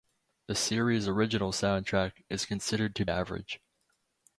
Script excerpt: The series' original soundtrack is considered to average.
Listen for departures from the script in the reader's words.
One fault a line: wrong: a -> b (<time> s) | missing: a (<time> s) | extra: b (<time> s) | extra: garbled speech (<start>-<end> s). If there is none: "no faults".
no faults